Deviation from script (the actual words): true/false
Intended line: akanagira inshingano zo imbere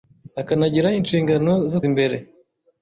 false